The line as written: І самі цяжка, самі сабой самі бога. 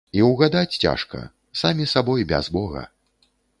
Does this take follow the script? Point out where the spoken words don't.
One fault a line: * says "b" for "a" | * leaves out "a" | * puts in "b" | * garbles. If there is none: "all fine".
* says "ўгадаць" for "самі"
* says "без" for "самі"